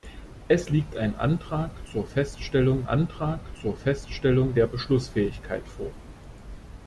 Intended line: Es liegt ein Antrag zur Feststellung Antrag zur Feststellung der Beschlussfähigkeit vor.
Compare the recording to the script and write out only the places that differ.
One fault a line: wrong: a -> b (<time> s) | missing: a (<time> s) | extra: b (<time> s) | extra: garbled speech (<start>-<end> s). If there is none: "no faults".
no faults